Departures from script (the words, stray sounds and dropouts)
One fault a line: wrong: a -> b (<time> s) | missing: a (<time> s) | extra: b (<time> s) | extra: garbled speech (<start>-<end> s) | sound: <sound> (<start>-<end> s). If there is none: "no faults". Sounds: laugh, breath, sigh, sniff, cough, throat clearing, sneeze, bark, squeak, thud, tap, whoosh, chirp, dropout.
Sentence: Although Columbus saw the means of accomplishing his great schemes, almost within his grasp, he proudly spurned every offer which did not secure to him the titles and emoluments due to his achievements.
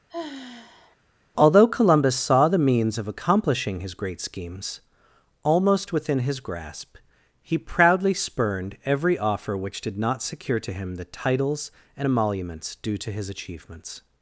sound: sigh (0.1-1.0 s)